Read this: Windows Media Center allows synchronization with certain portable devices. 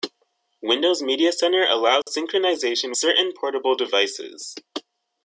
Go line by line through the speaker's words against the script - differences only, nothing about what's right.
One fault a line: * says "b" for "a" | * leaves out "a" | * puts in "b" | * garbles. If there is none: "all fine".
* leaves out "with"